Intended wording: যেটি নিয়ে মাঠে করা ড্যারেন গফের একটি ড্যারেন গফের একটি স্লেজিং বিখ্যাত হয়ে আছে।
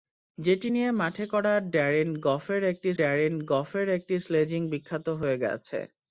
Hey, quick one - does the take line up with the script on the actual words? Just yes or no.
yes